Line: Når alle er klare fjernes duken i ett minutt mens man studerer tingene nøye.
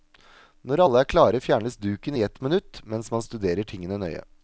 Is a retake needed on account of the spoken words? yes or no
no